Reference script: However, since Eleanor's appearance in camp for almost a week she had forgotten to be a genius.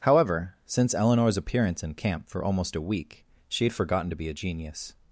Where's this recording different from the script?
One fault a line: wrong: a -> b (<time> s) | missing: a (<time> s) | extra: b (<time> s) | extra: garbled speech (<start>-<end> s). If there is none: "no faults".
no faults